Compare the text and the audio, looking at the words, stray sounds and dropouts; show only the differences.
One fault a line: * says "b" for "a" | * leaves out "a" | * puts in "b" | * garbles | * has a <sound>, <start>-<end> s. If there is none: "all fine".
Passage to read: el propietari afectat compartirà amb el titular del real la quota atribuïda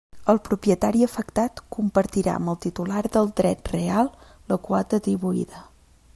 * puts in "dret"